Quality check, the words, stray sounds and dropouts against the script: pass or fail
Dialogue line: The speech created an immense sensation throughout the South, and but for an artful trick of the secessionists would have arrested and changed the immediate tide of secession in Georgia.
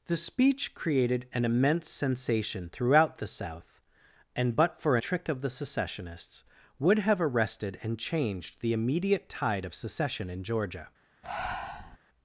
fail